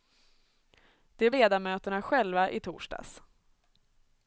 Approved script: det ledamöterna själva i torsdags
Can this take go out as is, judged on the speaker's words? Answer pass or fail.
pass